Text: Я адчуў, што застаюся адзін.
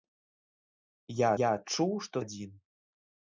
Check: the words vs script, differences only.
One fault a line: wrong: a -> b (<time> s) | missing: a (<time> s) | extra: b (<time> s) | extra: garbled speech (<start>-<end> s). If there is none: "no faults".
extra: я (1.4 s)
missing: застаюся (2.2 s)